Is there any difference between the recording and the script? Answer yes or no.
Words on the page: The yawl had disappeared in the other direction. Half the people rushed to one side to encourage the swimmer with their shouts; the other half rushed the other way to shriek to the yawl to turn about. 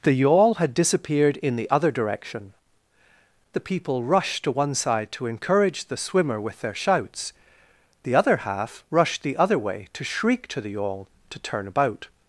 yes